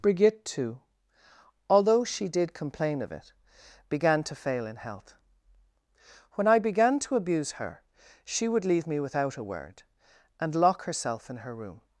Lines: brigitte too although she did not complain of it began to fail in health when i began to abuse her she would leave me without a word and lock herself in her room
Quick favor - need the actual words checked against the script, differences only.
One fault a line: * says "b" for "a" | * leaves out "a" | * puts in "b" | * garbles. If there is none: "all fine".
* leaves out "not"